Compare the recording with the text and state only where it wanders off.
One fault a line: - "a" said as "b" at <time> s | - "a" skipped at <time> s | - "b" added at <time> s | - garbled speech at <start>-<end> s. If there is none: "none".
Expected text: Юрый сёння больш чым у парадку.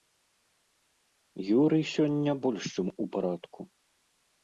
none